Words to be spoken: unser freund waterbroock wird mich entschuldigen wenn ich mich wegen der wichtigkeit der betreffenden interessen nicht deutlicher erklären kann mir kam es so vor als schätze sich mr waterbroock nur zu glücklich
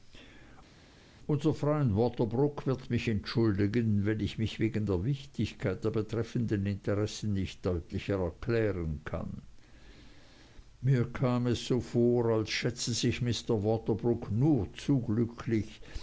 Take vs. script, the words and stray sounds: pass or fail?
pass